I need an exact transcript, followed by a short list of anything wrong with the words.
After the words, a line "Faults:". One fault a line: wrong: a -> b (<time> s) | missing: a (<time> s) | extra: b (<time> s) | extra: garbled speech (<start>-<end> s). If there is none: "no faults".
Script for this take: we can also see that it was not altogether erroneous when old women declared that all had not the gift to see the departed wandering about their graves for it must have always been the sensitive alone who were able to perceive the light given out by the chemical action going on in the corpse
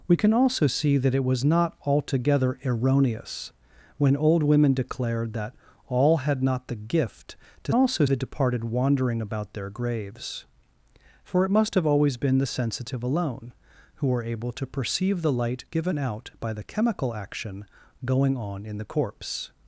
we can also see that it was not altogether erroneous when old women declared that all had not the gift to also the departed wandering about their graves for it must have always been the sensitive alone who were able to perceive the light given out by the chemical action going on in the corpse
Faults:
wrong: see -> also (7.7 s)